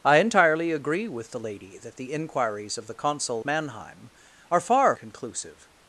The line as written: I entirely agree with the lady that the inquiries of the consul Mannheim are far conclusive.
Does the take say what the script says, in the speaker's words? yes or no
yes